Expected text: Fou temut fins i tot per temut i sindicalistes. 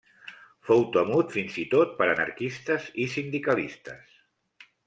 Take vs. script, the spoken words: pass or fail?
fail